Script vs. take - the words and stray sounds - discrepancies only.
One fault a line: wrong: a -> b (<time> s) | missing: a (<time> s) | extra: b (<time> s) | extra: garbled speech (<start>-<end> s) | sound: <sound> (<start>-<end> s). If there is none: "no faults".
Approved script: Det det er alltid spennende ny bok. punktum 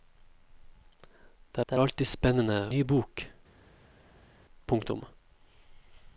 no faults